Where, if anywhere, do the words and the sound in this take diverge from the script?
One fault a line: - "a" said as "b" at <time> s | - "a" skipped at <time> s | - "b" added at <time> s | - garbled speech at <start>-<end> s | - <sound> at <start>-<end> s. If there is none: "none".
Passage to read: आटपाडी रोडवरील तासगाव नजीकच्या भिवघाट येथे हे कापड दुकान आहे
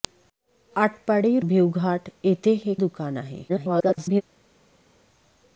- "रोडवरील तासगाव नजीकच्या" skipped at 1.4 s
- "कापड" skipped at 2.7 s
- garbled speech at 3.5-4.2 s